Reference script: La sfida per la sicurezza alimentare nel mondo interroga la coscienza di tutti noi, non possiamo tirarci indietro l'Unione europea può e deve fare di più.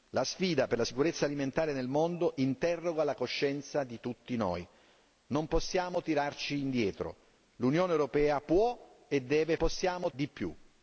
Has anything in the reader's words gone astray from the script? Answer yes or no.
yes